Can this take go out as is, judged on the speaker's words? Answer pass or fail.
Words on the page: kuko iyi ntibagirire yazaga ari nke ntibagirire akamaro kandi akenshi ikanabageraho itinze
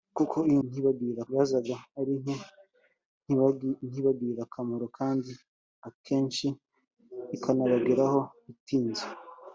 pass